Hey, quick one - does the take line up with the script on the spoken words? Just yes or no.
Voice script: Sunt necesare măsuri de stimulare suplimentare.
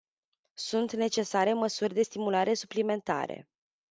yes